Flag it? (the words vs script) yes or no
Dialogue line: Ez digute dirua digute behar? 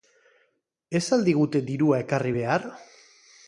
yes